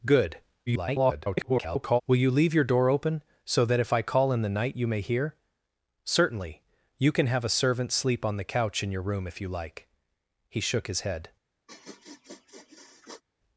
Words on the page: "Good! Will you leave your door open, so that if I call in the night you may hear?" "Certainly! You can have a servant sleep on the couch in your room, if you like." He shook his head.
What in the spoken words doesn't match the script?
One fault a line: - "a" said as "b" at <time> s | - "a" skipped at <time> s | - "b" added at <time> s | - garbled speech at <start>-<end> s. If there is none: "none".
- garbled speech at 0.7-2.0 s